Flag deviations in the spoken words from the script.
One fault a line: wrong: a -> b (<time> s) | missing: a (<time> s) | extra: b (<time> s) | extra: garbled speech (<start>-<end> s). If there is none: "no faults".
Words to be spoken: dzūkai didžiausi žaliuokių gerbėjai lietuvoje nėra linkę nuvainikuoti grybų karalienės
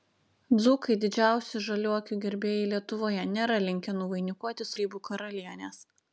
no faults